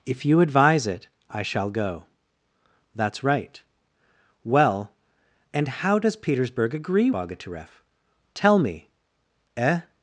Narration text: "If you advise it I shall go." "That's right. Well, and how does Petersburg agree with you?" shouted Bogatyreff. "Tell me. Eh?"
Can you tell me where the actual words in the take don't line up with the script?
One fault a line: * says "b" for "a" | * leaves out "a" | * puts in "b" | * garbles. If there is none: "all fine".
* leaves out "with you shouted"